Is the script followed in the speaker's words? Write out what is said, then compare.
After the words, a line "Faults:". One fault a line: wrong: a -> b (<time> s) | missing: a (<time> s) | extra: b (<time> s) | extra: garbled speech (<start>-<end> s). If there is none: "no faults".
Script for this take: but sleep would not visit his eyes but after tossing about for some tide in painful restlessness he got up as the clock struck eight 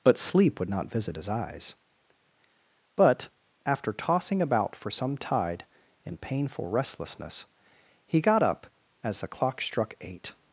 but sleep would not visit his eyes but after tossing about for some tide in painful restlessness he got up as the clock struck eight
Faults:
no faults